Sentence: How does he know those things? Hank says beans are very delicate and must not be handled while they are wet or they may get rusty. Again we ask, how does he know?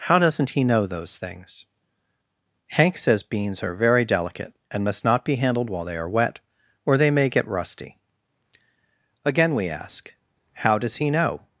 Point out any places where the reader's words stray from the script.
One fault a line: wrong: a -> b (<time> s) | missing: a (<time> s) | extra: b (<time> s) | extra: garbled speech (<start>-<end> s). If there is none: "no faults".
wrong: does -> doesn't (0.2 s)